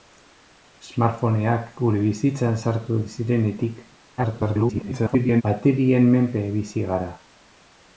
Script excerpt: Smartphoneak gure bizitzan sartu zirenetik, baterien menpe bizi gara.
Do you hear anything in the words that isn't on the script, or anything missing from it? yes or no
yes